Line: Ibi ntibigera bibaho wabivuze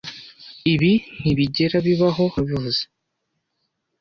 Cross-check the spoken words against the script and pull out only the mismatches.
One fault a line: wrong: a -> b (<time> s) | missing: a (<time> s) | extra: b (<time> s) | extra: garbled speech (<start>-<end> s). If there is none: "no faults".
no faults